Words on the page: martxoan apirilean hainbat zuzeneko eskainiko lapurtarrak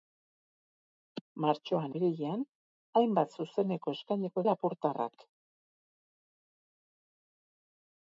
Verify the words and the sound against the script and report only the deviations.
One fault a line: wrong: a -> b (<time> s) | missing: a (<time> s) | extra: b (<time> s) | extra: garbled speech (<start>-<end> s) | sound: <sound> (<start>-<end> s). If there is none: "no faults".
no faults